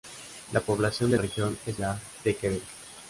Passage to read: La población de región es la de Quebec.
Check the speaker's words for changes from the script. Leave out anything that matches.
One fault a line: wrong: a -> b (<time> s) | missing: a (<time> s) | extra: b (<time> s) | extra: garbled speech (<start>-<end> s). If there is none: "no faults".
no faults